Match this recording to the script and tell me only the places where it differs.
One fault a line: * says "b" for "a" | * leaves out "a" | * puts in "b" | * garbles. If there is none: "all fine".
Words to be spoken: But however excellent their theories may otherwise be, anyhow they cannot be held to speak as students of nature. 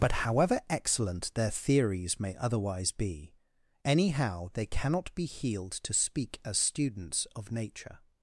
* says "healed" for "held"